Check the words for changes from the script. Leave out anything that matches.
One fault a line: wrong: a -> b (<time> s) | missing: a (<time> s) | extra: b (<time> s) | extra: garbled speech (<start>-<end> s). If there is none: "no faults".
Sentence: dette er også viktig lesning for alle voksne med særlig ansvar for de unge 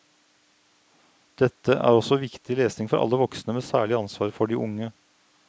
no faults